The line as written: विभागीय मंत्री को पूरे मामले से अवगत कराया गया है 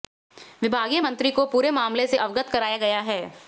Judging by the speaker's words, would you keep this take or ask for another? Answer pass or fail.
pass